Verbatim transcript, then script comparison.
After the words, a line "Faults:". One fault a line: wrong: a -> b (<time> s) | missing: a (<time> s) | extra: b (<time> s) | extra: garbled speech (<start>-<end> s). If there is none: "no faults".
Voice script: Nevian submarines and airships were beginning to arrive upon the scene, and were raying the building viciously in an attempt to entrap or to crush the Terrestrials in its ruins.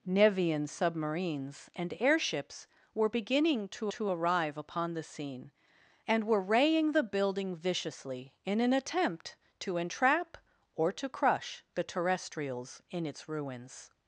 Nevian submarines and airships were beginning to to arrive upon the scene, and were raying the building viciously in an attempt to entrap or to crush the Terrestrials in its ruins.
Faults:
extra: to (3.9 s)